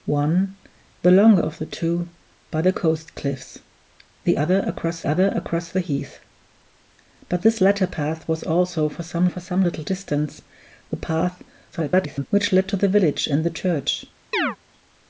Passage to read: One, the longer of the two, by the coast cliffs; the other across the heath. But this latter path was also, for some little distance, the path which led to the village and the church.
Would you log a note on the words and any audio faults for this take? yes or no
yes